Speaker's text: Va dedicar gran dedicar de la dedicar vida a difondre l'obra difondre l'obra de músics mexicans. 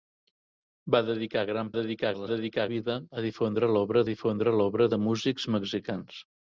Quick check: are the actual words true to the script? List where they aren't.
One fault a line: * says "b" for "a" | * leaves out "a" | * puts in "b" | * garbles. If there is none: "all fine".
all fine